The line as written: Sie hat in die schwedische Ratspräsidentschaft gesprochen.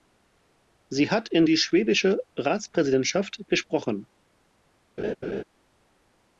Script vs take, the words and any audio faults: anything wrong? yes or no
yes